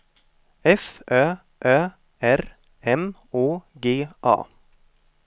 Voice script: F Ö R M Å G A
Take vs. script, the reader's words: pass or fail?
fail